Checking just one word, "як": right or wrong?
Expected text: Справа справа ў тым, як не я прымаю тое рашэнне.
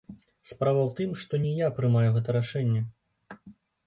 wrong